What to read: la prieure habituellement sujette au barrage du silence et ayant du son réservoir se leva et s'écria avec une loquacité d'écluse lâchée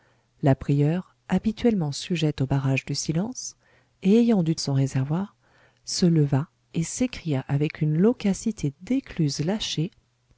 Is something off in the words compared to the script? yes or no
no